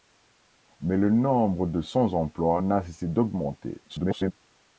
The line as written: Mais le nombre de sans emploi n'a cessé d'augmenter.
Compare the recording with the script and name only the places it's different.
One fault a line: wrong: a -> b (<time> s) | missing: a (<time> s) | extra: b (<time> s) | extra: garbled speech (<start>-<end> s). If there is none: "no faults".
extra: garbled speech (3.9-4.3 s)